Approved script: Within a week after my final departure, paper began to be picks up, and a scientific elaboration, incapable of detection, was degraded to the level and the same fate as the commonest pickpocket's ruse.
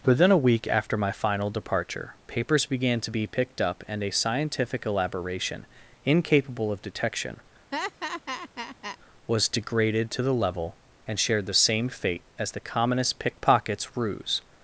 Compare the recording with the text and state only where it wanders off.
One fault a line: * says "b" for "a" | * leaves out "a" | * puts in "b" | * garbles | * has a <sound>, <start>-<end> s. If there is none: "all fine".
* says "papers" for "paper"
* says "picked" for "picks"
* has a laugh, 7.7-9.0 s
* puts in "shared"